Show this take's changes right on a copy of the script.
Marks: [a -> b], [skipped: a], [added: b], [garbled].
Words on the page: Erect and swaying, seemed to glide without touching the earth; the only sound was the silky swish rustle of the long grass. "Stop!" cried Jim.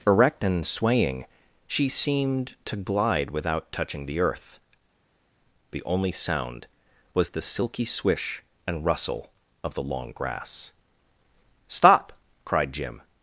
Erect and swaying, [added: she] seemed to glide without touching the earth; the only sound was the silky swish [added: and] rustle of the long grass. "Stop!" cried Jim.